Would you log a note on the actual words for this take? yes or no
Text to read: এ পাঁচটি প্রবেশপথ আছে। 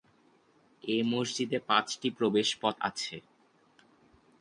yes